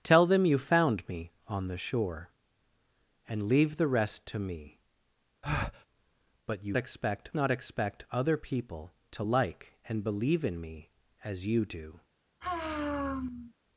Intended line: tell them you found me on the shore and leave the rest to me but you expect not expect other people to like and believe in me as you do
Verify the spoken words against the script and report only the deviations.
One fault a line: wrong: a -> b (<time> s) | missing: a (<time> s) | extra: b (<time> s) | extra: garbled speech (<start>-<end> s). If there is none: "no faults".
no faults